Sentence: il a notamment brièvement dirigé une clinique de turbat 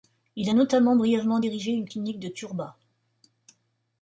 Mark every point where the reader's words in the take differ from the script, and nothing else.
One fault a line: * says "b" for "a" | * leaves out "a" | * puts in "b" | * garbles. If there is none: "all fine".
all fine